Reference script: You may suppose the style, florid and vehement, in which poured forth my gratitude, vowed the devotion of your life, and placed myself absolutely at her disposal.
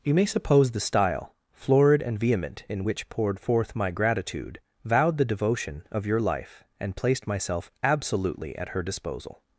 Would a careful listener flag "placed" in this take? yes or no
no